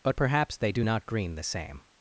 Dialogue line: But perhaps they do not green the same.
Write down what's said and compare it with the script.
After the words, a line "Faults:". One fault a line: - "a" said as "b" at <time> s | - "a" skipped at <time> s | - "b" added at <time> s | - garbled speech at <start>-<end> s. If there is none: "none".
But perhaps they do not green the same.
Faults:
none